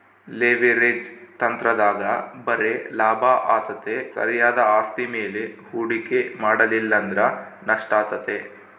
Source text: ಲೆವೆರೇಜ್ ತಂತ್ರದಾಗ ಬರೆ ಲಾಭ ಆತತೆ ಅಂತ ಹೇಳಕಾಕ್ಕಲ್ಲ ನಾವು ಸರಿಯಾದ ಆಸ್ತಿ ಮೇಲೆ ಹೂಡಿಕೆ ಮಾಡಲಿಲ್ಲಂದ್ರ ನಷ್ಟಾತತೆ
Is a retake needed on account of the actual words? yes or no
yes